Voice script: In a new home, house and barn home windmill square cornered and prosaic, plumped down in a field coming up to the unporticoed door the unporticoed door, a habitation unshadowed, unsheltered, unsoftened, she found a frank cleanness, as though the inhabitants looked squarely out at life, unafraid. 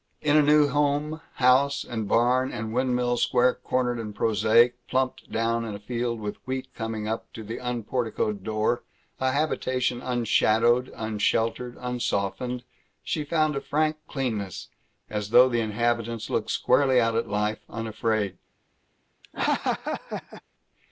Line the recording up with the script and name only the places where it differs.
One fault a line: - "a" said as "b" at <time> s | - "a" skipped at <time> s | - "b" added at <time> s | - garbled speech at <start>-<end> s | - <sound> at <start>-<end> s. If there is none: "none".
- "home" said as "and" at 2.5 s
- "with wheat" added at 6.2 s
- "the unporticoed door" skipped at 8.8 s
- laugh at 19.2-20.4 s